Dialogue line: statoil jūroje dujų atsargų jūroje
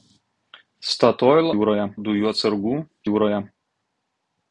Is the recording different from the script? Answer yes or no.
no